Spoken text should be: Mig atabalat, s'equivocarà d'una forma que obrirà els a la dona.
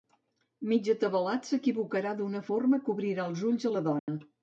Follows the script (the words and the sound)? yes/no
no